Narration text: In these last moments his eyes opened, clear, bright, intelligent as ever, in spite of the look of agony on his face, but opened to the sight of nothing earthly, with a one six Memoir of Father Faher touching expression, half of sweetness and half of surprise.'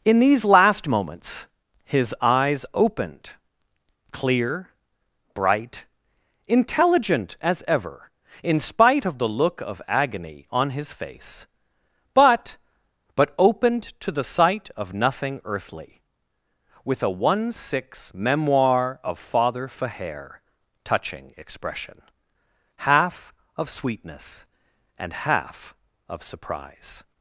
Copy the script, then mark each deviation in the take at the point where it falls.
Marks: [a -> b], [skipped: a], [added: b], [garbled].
In these last moments his eyes opened, clear, bright, intelligent as ever, in spite of the look of agony on his face, but [added: but] opened to the sight of nothing earthly, with a one six Memoir of Father Faher touching expression, half of sweetness and half of surprise.'